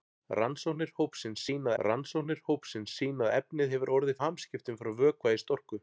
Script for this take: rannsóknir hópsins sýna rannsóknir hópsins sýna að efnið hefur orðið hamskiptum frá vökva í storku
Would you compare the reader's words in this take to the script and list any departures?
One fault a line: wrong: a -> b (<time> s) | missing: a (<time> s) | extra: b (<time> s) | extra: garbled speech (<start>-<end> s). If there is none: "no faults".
no faults